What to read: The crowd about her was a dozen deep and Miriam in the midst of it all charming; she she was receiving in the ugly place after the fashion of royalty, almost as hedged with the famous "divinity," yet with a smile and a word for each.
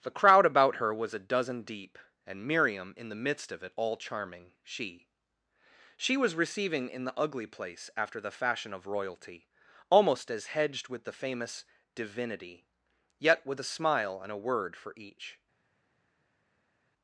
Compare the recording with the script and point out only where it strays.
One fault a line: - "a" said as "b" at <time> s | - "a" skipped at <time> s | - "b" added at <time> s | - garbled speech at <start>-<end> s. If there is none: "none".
none